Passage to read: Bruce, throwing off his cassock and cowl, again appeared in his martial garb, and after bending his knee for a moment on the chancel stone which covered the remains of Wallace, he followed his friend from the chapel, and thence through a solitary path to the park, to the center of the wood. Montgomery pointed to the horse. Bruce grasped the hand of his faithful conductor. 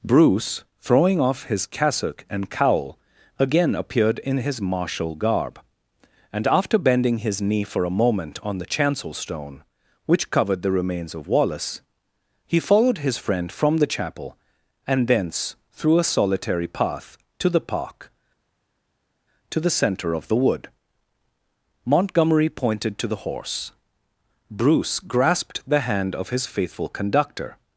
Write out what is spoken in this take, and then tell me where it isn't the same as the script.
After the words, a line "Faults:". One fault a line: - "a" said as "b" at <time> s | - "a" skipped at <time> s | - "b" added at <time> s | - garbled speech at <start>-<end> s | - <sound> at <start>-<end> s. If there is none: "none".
Bruce, throwing off his cassock and cowl, again appeared in his martial garb, and after bending his knee for a moment on the chancel stone which covered the remains of Wallace, he followed his friend from the chapel, and thence through a solitary path to the park, to the center of the wood. Montgomery pointed to the horse. Bruce grasped the hand of his faithful conductor.
Faults:
none